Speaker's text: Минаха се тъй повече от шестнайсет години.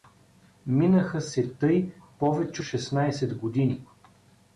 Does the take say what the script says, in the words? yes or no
no